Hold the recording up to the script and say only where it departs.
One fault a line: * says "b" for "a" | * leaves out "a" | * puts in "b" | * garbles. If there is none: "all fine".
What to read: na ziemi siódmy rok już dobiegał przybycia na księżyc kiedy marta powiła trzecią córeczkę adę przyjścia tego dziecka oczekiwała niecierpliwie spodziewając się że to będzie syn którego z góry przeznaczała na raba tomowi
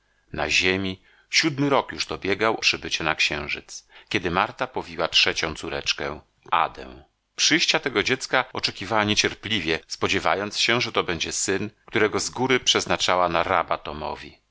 all fine